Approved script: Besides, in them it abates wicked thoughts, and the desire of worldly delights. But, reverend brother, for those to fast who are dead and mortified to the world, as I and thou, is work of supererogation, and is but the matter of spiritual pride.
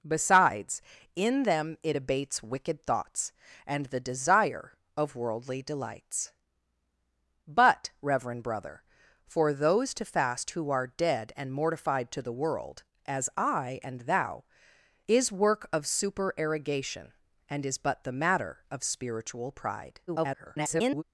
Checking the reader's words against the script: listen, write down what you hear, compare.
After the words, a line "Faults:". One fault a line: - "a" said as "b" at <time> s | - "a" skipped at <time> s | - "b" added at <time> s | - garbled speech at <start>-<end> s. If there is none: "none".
Besides, in them it abates wicked thoughts, and the desire of worldly delights. But, reverend brother, for those to fast who are dead and mortified to the world, as I and thou, is work of supererogation, and is but the matter of spiritual pride. [garbled]
Faults:
- garbled speech at 20.1-21.0 s